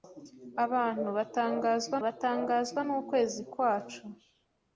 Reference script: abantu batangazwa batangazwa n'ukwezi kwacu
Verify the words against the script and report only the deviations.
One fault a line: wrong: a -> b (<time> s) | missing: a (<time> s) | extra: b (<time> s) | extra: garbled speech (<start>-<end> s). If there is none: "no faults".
no faults